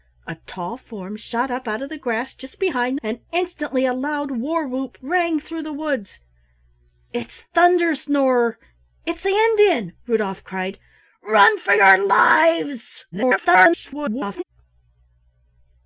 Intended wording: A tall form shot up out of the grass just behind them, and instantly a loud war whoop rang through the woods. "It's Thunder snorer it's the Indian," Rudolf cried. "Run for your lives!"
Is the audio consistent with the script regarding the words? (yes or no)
no